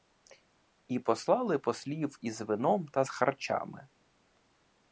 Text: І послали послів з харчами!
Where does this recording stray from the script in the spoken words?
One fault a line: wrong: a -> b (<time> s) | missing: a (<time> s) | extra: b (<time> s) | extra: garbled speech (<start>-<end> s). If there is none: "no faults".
extra: із вином та (2.2 s)